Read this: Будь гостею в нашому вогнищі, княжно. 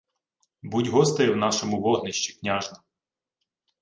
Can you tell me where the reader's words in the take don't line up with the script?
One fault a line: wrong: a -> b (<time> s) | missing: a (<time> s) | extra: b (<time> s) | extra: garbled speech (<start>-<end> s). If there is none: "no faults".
no faults